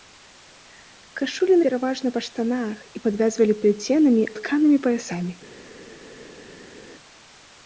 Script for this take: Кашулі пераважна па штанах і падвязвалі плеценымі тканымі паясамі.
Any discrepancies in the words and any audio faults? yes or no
no